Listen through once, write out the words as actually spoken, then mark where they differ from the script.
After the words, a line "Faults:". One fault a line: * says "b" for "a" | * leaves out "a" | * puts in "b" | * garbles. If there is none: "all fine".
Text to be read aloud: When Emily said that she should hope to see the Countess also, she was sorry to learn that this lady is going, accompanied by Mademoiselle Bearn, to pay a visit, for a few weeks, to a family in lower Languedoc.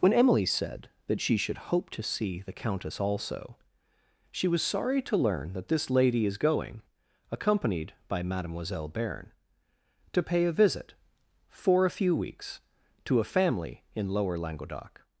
When Emily said that she should hope to see the Countess also, she was sorry to learn that this lady is going, accompanied by Mademoiselle Bearn, to pay a visit, for a few weeks, to a family in lower Languedoc.
Faults:
all fine